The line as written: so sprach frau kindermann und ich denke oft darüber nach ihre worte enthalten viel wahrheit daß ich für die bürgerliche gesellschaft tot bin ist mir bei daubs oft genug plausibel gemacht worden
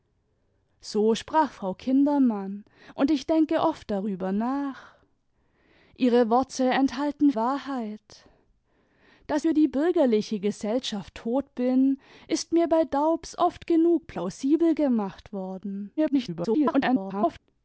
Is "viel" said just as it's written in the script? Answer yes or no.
no